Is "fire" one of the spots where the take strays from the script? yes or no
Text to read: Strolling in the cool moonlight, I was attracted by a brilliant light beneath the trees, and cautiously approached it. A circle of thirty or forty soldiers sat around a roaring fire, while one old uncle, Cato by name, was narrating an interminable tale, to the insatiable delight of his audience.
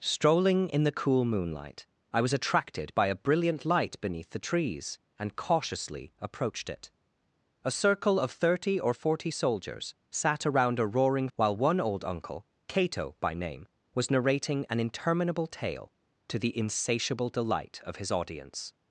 yes